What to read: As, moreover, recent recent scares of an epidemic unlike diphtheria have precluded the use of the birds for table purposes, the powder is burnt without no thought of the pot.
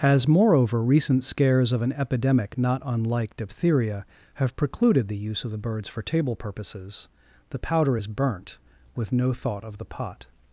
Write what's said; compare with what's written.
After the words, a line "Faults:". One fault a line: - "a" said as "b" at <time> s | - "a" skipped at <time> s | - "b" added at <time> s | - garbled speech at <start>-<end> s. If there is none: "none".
As, moreover, recent scares of an epidemic not unlike diphtheria have precluded the use of the birds for table purposes, the powder is burnt with no thought of the pot.
Faults:
- "recent" skipped at 1.2 s
- "not" added at 2.6 s
- "without" said as "with" at 8.9 s